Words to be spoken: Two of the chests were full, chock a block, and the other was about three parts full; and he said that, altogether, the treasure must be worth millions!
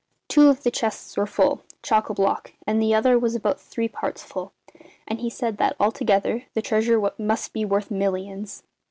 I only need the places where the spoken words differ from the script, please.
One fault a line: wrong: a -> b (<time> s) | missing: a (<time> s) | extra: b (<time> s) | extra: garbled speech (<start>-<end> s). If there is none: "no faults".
no faults